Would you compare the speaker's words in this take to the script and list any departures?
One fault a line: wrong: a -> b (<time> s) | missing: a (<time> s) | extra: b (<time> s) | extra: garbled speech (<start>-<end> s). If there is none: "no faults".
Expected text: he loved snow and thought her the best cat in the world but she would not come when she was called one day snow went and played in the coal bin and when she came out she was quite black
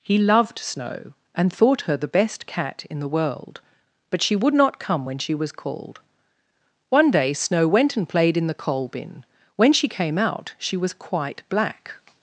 missing: and (9.2 s)